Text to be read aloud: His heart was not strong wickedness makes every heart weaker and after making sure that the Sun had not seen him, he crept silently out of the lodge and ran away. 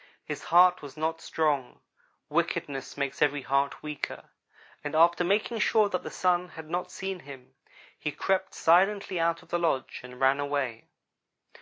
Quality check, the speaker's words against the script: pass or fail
pass